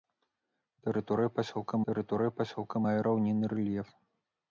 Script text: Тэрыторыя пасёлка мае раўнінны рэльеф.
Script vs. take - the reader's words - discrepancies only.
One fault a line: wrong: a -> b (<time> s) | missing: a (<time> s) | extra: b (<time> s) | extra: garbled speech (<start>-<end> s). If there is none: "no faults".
extra: тэрыторыя пасёлка (1.9 s)